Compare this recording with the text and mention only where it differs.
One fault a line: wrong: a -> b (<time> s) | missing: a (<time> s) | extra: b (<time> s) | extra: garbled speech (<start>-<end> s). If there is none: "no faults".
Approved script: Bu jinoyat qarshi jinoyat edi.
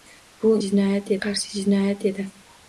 no faults